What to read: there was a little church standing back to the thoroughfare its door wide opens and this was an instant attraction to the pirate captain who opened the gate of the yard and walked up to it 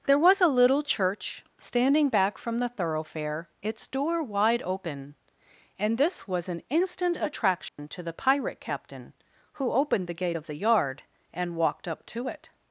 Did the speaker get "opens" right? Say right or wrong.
wrong